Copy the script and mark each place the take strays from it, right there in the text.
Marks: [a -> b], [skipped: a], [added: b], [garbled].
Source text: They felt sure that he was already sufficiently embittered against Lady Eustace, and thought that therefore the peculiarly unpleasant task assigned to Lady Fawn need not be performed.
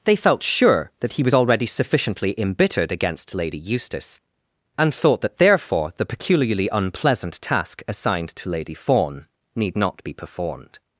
They felt sure that he was already sufficiently embittered against Lady Eustace, and thought that therefore the peculiarly unpleasant task assigned to Lady Fawn need not be performed.